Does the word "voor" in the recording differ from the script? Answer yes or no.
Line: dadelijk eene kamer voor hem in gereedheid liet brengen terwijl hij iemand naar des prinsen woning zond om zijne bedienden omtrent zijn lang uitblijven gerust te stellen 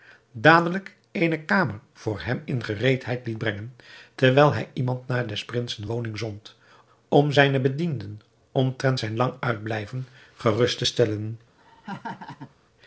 no